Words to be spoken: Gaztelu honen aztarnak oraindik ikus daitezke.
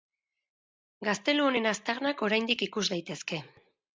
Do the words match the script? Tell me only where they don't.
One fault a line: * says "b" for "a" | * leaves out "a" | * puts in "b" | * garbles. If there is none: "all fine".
all fine